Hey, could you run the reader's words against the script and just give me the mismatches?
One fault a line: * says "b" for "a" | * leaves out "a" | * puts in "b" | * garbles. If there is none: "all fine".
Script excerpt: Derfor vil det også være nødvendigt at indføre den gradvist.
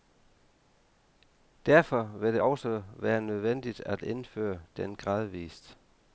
all fine